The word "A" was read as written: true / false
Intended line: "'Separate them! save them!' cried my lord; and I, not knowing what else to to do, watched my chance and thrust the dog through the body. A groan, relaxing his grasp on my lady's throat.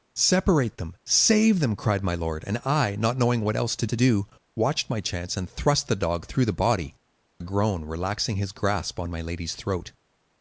true